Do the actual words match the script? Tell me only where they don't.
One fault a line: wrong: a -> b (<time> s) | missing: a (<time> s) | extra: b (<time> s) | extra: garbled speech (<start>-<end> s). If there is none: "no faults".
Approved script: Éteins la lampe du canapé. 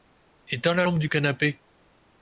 no faults